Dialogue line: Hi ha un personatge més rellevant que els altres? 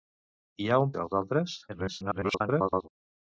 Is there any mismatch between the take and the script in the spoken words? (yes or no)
yes